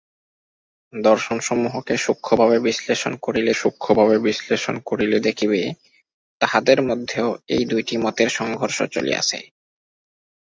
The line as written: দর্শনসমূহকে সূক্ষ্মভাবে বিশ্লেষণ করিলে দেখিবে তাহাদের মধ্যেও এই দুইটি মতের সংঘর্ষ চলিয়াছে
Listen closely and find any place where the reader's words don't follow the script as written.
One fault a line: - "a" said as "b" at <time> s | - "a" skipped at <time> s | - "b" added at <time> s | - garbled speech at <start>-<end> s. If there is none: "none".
- "সূক্ষ্মভাবে বিশ্লেষণ করিলে" added at 3.5 s